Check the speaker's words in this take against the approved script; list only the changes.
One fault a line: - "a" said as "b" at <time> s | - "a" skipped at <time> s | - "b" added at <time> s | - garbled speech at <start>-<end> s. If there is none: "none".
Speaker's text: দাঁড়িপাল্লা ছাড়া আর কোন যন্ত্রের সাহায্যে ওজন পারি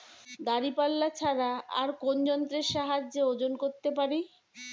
- "করতে" added at 3.6 s